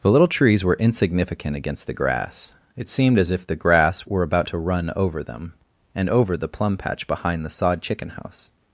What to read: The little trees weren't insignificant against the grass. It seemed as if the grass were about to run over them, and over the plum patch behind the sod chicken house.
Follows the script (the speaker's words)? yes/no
no